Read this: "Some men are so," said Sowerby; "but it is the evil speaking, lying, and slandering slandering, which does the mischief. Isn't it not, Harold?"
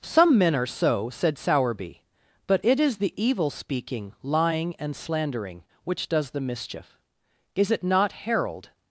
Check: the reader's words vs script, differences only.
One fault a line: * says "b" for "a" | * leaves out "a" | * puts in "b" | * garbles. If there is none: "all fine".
* leaves out "slandering"
* says "Is" for "Isn't"